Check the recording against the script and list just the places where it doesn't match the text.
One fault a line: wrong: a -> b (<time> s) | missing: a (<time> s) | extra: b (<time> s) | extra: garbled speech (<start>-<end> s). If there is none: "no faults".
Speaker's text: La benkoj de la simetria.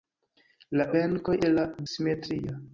no faults